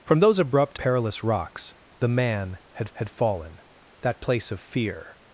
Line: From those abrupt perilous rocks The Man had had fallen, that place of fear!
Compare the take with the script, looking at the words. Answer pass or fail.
pass